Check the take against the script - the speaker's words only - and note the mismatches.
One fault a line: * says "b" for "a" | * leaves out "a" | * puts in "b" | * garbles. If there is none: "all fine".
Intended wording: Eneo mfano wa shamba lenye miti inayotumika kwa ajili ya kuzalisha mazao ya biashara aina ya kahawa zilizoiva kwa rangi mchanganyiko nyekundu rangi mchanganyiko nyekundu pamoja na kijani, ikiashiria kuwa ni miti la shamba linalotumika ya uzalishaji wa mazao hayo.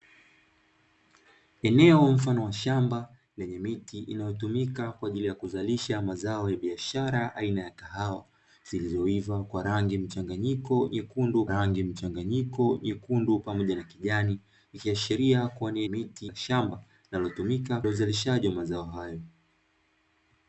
all fine